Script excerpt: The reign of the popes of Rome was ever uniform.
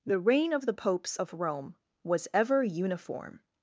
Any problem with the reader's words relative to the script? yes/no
no